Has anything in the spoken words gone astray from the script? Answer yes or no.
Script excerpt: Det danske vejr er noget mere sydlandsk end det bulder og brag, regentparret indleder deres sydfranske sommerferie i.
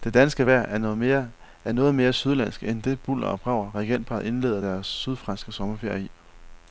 no